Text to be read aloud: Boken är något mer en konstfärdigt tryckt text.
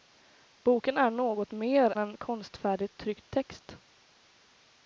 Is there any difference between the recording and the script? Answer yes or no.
no